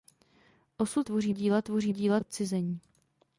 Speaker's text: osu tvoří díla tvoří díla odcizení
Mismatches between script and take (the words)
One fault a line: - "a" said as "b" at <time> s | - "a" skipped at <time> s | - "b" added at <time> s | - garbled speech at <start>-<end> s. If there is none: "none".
none